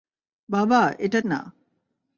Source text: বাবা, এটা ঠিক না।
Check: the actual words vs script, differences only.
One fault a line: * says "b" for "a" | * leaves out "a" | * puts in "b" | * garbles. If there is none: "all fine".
* leaves out "ঠিক"